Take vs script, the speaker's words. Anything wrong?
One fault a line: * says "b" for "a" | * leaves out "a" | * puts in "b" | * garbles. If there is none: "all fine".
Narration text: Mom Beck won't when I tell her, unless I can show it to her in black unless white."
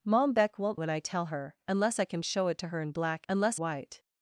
all fine